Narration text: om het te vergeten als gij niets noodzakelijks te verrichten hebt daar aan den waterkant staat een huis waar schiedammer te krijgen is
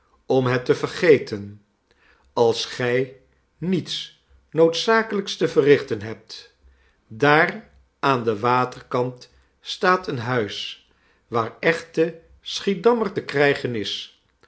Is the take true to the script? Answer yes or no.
no